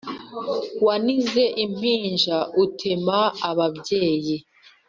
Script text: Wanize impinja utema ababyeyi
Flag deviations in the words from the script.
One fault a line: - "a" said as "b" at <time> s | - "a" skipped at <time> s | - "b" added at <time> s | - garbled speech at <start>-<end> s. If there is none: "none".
none